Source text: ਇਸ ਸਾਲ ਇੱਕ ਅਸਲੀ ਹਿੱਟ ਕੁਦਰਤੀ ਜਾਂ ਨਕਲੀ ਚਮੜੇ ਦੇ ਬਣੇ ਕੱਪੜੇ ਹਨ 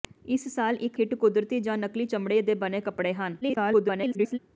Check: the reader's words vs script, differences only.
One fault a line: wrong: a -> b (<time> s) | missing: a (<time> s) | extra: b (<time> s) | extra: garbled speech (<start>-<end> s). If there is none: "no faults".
missing: ਅਸਲੀ (1.0 s)
extra: garbled speech (3.4-4.4 s)